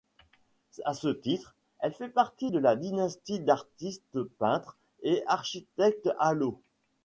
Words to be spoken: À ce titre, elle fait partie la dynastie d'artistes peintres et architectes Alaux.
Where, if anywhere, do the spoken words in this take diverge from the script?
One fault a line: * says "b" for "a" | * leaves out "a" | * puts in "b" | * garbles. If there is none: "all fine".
* puts in "de"